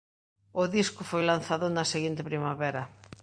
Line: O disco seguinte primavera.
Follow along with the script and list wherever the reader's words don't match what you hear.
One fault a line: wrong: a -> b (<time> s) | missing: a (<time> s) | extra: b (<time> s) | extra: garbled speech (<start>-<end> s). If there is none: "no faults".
extra: foi lanzado na (1.0 s)